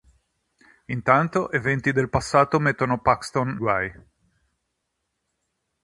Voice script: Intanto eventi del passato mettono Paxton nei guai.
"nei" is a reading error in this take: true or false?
true